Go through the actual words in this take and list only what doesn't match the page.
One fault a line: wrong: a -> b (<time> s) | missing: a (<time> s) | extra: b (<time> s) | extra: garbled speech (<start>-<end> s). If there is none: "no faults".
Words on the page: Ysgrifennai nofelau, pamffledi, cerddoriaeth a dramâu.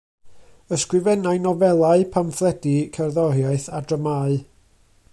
no faults